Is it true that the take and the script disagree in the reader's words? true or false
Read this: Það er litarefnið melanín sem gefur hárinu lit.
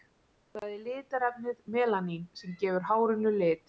false